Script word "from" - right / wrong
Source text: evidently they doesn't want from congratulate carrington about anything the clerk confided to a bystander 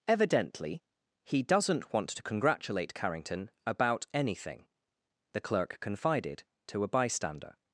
wrong